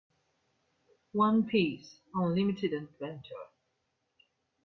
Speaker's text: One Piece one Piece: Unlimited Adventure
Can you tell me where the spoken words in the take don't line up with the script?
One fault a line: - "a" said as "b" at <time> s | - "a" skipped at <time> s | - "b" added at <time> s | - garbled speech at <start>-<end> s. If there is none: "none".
- "one Piece" skipped at 2.0 s